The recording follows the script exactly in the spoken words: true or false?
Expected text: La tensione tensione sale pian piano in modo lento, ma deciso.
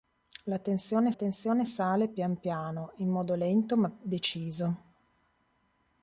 true